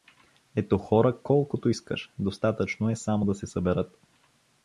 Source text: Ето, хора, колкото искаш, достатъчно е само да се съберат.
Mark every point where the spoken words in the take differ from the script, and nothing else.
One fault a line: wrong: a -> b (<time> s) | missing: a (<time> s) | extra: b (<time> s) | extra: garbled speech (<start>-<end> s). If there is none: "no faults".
no faults